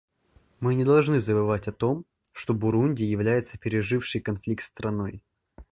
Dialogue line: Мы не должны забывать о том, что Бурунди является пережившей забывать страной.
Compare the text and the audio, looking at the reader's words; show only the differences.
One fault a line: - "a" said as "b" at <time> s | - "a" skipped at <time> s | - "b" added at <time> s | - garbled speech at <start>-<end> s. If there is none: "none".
- "забывать" said as "конфликт" at 4.2 s